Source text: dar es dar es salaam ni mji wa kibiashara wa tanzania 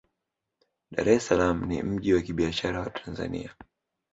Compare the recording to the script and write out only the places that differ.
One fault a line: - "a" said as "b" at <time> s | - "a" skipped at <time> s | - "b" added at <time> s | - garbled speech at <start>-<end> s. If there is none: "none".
- "dar es" skipped at 1.2 s